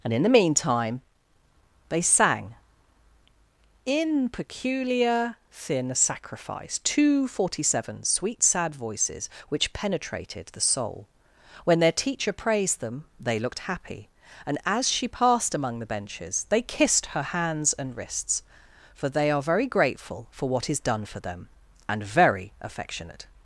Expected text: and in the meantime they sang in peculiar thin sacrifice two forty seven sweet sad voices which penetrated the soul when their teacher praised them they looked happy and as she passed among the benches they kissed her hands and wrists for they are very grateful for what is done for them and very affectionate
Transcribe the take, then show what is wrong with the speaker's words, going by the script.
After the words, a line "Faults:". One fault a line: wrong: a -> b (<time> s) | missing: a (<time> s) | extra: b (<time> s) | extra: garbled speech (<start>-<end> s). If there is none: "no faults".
and in the meantime they sang in peculiar thin sacrifice two forty seven sweet sad voices which penetrated the soul when their teacher praised them they looked happy and as she passed among the benches they kissed her hands and wrists for they are very grateful for what is done for them and very affectionate
Faults:
no faults